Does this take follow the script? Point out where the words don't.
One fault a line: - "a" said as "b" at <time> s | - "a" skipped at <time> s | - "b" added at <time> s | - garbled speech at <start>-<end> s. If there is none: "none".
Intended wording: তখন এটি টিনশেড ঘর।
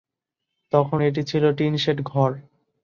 - "ছিল" added at 1.2 s